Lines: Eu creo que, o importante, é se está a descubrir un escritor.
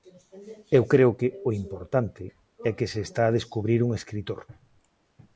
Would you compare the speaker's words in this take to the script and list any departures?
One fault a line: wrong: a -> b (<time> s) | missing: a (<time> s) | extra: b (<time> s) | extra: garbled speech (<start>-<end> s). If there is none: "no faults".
extra: que (2.8 s)